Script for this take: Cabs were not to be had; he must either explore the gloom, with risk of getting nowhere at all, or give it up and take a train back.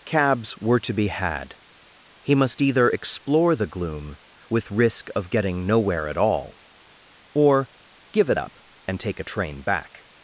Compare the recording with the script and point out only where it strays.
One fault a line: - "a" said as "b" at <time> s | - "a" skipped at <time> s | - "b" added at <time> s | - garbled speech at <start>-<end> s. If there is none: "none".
- "not" skipped at 0.8 s